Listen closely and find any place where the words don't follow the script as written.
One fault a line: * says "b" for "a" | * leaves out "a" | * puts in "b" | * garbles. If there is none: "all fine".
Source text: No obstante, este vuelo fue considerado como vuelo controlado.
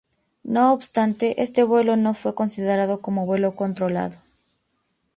* puts in "no"